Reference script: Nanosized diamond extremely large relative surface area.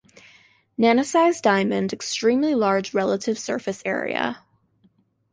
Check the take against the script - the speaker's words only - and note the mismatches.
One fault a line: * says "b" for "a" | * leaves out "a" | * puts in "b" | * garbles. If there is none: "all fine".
all fine